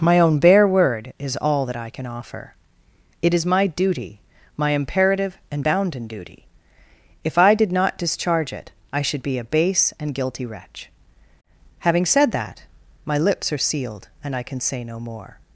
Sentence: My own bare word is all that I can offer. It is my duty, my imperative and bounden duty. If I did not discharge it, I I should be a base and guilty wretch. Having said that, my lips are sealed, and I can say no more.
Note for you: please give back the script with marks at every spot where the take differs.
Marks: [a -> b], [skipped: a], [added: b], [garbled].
My own bare word is all that I can offer. It is my duty, my imperative and bounden duty. If I did not discharge it, I [skipped: I] should be a base and guilty wretch. Having said that, my lips are sealed, and I can say no more.